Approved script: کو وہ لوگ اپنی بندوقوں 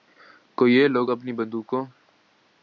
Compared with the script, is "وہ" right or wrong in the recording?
wrong